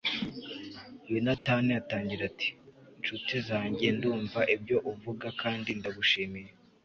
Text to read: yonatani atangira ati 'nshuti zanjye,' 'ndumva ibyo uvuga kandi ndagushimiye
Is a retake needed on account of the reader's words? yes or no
no